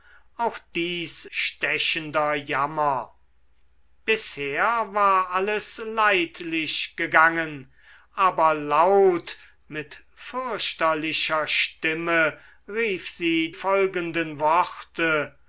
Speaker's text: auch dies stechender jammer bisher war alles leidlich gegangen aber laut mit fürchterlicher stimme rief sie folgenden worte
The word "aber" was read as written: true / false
true